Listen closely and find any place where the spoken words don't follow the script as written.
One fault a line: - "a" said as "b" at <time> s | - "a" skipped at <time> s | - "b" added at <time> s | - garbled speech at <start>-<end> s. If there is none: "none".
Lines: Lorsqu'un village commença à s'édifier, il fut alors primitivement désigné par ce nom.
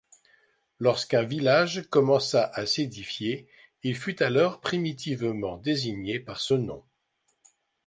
none